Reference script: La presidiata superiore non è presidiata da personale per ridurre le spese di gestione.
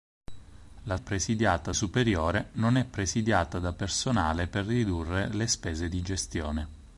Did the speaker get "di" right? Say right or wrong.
right